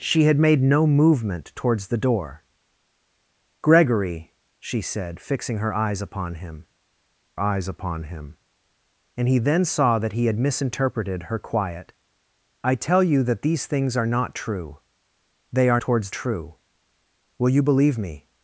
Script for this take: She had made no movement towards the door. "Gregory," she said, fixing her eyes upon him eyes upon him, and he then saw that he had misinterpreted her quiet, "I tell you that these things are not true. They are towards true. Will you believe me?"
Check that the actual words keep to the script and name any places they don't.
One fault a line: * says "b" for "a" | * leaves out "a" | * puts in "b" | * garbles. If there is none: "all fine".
all fine